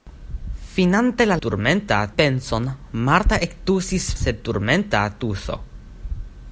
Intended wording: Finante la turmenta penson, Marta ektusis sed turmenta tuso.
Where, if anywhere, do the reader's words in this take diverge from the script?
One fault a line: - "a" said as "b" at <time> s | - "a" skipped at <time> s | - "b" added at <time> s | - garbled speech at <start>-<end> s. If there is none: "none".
none